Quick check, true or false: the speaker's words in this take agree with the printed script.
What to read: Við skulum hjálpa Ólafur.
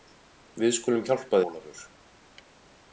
true